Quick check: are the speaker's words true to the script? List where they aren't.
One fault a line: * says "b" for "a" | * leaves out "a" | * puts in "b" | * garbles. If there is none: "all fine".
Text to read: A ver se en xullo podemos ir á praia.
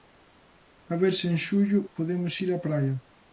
all fine